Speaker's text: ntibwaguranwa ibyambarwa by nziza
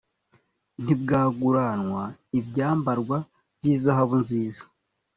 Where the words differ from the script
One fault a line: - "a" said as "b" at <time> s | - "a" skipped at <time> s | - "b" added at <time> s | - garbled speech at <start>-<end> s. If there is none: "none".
- "izahabu" added at 3.7 s